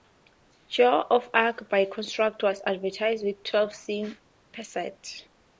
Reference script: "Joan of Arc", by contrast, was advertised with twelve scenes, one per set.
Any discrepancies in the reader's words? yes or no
yes